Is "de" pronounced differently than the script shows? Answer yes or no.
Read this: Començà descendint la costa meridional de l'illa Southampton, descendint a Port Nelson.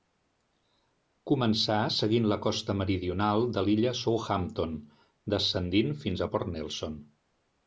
no